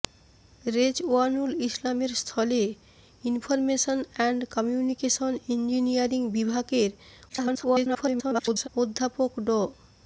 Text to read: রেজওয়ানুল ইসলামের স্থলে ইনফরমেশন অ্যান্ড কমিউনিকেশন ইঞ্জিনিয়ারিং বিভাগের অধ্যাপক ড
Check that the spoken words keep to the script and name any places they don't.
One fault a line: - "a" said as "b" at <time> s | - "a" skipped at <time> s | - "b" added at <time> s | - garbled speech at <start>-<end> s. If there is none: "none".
- garbled speech at 7.3-8.7 s